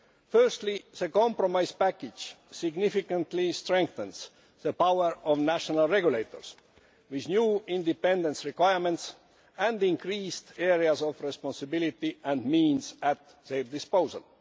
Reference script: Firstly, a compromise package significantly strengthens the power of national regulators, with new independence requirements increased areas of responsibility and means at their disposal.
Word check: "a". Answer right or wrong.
wrong